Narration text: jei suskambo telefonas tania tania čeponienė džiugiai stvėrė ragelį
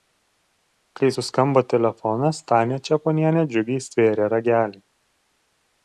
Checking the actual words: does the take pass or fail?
fail